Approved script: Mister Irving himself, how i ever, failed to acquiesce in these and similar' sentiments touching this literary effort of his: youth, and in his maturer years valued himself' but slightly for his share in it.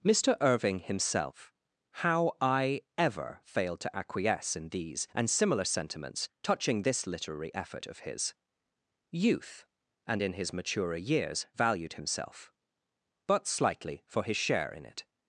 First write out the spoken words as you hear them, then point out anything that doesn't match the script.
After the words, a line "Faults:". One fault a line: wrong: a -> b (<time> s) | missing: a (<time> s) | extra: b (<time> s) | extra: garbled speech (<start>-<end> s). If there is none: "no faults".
Mister Irving himself, how i ever, failed to acquiesce in these and similar' sentiments touching this literary effort of his: youth, and in his maturer years valued himself' but slightly for his share in it.
Faults:
no faults